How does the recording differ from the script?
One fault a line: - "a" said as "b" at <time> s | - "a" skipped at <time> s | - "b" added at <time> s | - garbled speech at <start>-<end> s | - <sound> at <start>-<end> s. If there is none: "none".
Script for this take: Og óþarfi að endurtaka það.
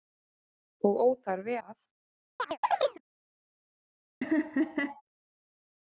- "að endurtaka" skipped at 1.6 s
- chirp at 2.4-3.0 s
- laugh at 4.2-5.0 s